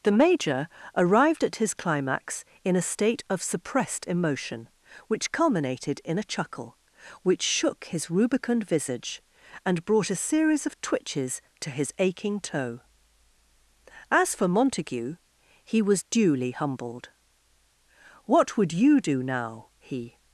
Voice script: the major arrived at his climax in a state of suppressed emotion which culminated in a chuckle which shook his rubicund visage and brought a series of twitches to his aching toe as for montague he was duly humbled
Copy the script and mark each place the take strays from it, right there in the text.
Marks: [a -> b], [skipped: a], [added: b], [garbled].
the major arrived at his climax in a state of suppressed emotion which culminated in a chuckle which shook his rubicund visage and brought a series of twitches to his aching toe as for montague he was duly humbled [added: what would you do now he]